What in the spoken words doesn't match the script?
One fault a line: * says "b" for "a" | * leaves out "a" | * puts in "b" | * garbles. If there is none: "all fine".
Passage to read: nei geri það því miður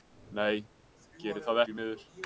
all fine